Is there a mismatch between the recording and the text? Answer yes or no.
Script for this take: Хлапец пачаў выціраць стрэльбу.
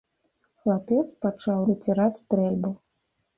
no